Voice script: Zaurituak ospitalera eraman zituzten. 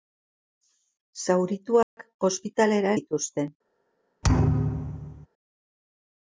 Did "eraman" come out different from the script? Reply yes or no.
yes